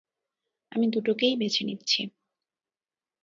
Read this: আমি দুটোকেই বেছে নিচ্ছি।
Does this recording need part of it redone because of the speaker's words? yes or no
no